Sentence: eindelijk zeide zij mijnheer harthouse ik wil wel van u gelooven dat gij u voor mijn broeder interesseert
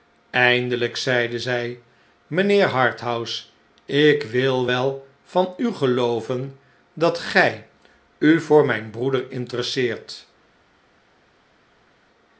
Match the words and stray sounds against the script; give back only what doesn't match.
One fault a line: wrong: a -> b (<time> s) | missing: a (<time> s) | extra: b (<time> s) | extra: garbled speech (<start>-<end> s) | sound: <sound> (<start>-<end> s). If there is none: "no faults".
no faults